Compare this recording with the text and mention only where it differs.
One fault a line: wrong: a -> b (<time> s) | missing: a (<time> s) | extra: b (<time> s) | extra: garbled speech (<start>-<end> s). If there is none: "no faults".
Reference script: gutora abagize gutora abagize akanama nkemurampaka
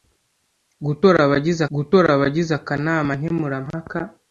no faults